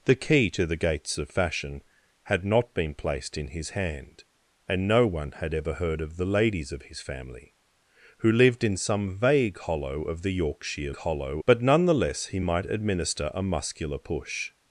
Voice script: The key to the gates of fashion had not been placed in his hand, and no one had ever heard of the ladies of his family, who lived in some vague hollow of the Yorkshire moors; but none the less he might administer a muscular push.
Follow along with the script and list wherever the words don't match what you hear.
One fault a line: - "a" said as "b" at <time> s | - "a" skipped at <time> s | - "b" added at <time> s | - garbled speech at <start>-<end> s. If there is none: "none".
- "moors" said as "hollow" at 11.0 s